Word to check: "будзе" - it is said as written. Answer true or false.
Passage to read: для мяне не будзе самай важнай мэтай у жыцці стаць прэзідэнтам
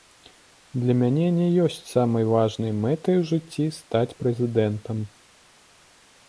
false